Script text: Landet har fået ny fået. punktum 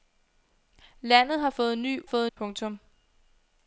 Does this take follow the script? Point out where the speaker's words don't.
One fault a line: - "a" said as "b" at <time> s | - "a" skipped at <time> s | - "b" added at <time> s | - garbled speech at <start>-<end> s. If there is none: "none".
none